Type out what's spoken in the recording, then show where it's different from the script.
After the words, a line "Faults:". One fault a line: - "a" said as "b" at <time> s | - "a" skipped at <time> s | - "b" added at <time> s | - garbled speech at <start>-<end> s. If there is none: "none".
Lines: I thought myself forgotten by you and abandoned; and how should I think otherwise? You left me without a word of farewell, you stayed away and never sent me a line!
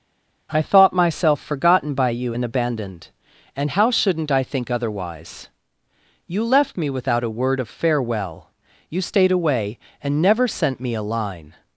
I thought myself forgotten by you and abandoned; and how shouldn't I think otherwise? You left me without a word of farewell, you stayed away and never sent me a line!
Faults:
- "should" said as "shouldn't" at 3.9 s